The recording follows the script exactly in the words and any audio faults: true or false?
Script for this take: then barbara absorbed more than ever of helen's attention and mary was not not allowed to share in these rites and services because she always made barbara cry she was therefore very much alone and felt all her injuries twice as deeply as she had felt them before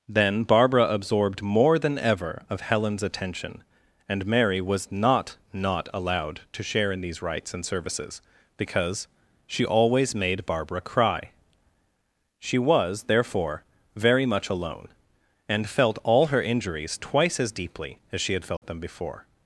false